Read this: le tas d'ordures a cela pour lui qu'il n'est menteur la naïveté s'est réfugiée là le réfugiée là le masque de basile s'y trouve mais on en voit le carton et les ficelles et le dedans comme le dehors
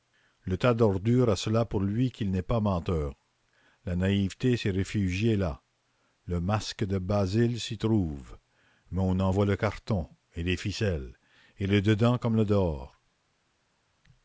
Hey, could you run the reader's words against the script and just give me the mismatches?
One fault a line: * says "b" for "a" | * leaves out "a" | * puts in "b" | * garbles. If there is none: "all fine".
* puts in "pas"
* leaves out "réfugiée là le"